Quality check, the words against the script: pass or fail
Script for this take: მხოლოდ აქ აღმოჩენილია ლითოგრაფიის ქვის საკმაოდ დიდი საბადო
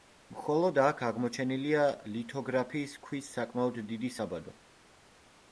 pass